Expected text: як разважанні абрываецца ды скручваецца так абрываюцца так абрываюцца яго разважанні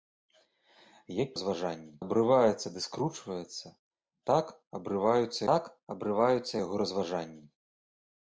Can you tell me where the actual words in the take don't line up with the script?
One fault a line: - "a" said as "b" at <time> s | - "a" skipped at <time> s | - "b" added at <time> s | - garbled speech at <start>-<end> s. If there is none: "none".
none